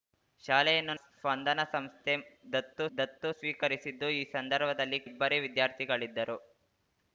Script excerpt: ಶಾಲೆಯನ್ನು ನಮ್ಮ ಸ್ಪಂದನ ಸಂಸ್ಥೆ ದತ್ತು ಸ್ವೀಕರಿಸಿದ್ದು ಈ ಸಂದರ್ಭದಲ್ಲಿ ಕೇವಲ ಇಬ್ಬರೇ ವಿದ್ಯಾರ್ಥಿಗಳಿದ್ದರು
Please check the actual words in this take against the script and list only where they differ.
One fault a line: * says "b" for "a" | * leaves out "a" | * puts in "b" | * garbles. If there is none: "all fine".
* leaves out "ನಮ್ಮ"
* puts in "ದತ್ತು"
* leaves out "ಕೇವಲ"